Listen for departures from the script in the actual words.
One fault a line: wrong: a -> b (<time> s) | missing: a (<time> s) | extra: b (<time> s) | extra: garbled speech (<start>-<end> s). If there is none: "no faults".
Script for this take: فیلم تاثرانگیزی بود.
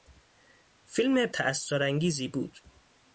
no faults